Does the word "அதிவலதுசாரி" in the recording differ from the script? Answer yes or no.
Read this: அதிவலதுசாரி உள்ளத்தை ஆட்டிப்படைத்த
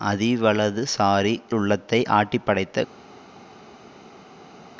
no